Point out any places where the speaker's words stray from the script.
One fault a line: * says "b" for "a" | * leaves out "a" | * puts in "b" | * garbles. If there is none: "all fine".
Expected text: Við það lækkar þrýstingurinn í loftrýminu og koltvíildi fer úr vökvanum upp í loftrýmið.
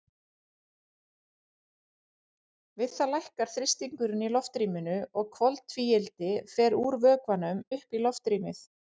all fine